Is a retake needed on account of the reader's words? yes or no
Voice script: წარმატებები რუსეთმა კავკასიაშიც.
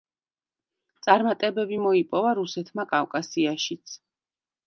yes